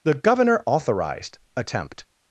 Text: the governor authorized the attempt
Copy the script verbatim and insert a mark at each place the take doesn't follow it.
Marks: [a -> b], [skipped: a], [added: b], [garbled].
the governor authorized [skipped: the] attempt